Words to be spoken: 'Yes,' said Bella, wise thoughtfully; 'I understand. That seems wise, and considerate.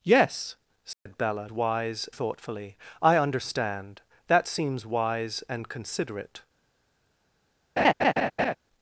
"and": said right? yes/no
yes